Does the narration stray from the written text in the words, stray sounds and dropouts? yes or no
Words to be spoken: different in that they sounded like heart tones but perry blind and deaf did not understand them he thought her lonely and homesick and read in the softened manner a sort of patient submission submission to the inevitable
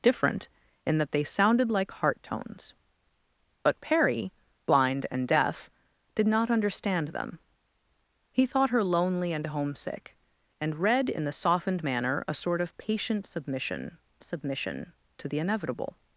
no